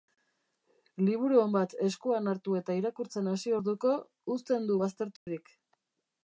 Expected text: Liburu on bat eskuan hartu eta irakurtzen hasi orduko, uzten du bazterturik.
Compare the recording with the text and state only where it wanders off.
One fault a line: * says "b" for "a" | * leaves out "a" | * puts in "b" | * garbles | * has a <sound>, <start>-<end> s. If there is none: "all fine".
* has a dropout, 5.2-5.3 s